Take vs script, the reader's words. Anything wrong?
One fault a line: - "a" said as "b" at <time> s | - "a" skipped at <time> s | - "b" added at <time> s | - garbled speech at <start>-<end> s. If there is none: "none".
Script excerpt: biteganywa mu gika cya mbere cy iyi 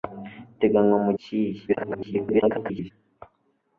- "gika cya mbere" skipped at 1.1 s
- garbled speech at 1.7-2.9 s